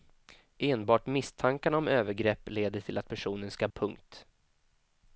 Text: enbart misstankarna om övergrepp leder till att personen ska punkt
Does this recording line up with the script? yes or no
yes